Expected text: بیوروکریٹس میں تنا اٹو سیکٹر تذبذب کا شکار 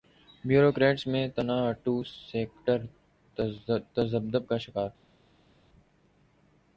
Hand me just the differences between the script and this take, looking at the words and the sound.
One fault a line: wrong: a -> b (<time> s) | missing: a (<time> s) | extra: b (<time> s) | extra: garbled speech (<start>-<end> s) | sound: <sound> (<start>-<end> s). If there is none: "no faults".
no faults